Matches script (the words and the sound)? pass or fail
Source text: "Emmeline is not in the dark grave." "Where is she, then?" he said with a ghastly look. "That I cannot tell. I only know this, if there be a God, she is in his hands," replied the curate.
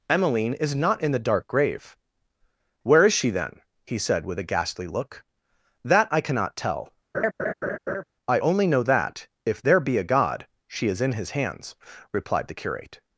fail